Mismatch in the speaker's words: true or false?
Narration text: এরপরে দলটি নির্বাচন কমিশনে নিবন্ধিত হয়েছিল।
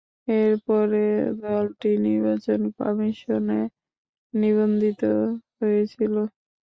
false